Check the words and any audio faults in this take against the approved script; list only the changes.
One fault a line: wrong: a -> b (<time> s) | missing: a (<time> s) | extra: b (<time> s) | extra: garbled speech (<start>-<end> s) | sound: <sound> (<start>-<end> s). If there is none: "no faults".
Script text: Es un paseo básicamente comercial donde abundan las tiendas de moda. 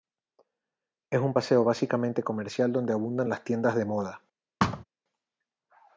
sound: thud (4.6-4.8 s)